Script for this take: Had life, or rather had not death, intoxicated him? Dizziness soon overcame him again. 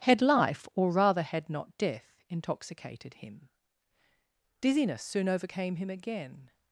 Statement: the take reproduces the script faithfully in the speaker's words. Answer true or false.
true